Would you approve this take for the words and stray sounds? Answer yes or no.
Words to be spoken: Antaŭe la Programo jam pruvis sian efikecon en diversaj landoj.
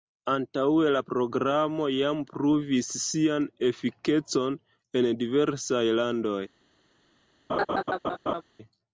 no